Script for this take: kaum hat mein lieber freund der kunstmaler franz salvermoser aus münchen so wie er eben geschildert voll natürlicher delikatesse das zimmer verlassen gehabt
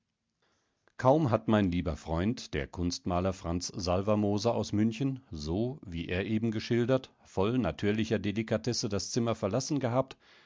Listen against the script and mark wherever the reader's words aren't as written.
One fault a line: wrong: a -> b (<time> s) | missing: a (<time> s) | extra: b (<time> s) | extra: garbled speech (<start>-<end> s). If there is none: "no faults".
no faults